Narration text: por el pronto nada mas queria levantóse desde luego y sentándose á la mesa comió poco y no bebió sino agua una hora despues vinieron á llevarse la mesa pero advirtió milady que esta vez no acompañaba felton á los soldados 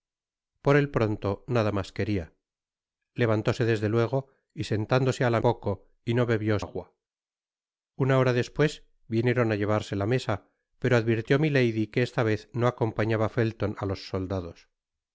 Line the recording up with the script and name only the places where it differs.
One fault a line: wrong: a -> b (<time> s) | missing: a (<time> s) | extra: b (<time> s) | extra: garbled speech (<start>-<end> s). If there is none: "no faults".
missing: mesa comió (5.4 s)
missing: sino (6.6 s)